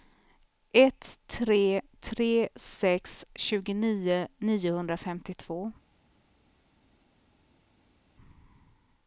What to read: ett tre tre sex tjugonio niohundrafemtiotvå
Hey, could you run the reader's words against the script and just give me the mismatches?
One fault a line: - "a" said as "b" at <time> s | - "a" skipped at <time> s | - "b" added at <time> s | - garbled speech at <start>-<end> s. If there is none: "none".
none